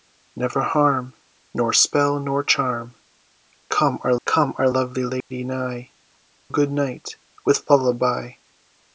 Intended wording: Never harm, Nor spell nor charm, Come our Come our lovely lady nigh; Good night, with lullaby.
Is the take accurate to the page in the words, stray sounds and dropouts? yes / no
no